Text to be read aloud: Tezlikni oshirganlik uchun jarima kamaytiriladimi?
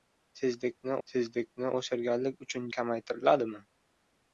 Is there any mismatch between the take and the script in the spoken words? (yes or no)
yes